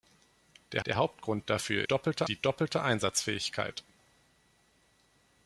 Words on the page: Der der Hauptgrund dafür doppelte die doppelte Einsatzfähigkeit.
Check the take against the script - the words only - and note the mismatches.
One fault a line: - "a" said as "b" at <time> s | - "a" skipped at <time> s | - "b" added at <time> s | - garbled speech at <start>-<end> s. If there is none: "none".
none